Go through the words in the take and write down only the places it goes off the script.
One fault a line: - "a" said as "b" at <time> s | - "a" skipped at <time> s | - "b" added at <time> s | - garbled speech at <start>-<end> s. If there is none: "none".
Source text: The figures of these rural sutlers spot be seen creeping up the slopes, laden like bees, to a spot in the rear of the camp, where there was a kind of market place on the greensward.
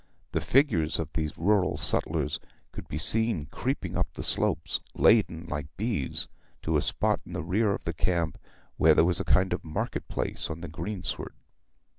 - "spot" said as "could" at 2.7 s